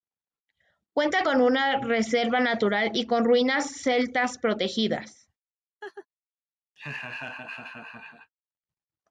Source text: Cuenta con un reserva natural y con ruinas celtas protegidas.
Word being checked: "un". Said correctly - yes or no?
no